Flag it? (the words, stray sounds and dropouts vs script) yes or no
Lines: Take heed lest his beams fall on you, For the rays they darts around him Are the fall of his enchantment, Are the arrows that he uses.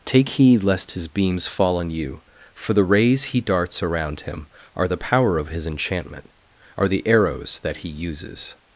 yes